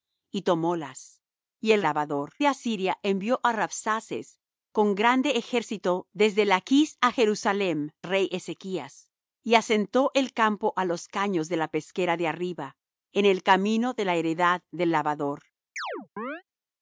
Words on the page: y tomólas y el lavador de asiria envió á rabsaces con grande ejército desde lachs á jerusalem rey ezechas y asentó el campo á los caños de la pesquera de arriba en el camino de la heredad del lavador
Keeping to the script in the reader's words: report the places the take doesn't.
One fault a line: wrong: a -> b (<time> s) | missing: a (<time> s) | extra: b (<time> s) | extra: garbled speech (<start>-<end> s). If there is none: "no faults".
no faults